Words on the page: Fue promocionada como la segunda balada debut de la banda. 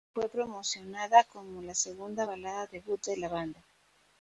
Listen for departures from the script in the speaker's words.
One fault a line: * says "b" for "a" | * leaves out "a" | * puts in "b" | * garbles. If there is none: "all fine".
all fine